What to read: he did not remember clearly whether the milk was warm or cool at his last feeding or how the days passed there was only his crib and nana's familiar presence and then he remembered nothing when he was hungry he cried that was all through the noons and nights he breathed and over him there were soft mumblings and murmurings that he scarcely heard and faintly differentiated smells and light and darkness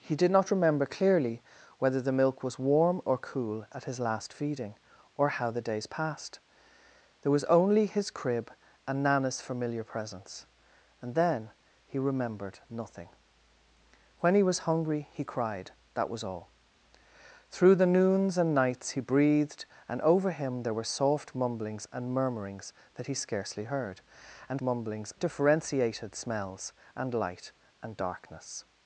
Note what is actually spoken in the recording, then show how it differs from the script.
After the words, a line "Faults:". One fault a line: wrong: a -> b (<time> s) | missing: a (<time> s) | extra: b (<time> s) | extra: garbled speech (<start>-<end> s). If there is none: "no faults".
he did not remember clearly whether the milk was warm or cool at his last feeding or how the days passed there was only his crib and nana's familiar presence and then he remembered nothing when he was hungry he cried that was all through the noons and nights he breathed and over him there were soft mumblings and murmurings that he scarcely heard and mumblings differentiated smells and light and darkness
Faults:
wrong: faintly -> mumblings (24.6 s)